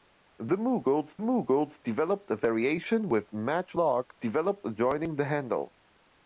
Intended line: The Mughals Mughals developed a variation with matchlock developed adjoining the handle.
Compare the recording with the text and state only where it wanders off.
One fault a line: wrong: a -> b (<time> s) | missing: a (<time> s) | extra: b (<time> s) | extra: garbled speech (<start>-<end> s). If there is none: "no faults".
no faults